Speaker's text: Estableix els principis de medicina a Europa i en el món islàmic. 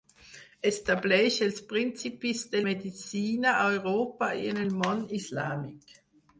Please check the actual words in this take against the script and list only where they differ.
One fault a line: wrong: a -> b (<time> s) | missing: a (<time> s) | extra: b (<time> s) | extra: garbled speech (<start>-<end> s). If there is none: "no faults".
no faults